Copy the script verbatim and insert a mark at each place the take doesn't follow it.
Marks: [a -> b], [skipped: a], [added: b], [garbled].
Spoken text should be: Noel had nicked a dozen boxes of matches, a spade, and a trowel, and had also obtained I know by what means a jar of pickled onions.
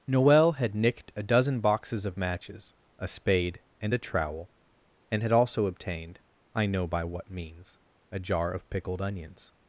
Noel had nicked a dozen boxes of matches, a spade, and a trowel, and had also obtained I know by what means a jar of pickled onions.